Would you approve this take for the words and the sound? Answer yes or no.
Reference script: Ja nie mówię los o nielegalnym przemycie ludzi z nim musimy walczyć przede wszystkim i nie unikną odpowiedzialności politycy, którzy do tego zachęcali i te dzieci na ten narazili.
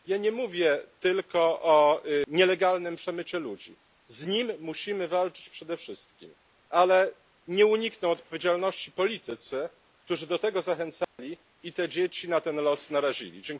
no